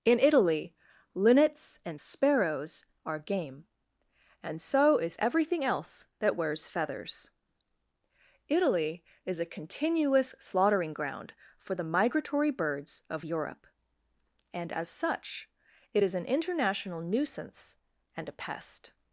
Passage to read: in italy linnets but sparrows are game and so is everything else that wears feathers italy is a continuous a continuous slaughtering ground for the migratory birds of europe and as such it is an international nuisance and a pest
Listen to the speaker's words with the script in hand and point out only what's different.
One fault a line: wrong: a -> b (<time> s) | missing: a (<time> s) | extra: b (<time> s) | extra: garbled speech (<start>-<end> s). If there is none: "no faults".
wrong: but -> and (1.9 s)
missing: a continuous (10.4 s)